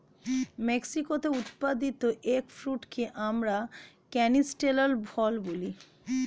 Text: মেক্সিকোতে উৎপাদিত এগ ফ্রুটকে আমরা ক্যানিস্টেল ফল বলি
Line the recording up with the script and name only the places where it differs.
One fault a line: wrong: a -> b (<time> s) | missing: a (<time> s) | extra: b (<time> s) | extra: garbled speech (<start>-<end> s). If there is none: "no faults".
no faults